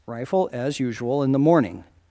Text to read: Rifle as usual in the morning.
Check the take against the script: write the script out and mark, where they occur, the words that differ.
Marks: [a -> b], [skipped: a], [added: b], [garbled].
Rifle as usual in the morning.